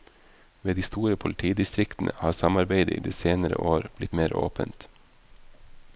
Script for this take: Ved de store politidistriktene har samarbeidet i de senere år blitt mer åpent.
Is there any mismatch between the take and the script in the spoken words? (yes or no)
no